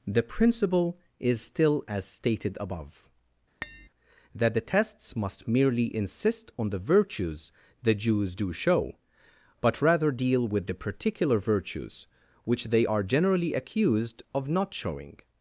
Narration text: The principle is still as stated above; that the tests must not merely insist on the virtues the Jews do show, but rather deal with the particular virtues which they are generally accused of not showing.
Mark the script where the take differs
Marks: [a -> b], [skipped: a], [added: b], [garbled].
The principle is still as stated above; that the tests must [skipped: not] merely insist on the virtues the Jews do show, but rather deal with the particular virtues which they are generally accused of not showing.